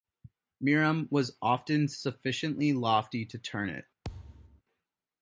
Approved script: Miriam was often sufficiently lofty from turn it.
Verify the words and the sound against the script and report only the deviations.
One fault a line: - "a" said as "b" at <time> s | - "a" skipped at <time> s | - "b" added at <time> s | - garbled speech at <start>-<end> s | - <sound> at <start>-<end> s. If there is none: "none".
- "from" said as "to" at 3.2 s
- thud at 4.0-4.6 s